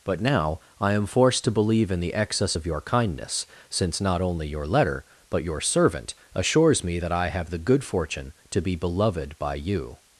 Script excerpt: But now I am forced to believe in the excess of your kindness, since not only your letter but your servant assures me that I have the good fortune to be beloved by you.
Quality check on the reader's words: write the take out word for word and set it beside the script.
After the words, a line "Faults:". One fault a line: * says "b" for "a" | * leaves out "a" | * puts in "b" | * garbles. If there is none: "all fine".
But now I am forced to believe in the excess of your kindness, since not only your letter but your servant assures me that I have the good fortune to be beloved by you.
Faults:
all fine